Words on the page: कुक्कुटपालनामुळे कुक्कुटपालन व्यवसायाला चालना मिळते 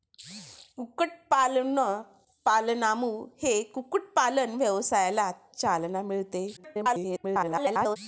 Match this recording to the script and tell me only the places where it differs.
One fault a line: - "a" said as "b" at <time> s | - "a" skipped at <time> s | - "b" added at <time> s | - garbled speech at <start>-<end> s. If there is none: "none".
- garbled speech at 6.6-8.0 s